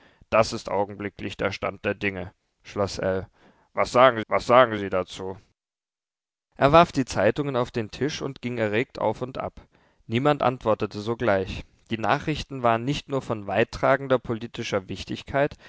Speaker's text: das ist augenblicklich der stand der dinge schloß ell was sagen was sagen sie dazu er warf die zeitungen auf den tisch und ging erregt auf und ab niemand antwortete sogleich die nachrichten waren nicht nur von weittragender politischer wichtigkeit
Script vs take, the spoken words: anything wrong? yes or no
no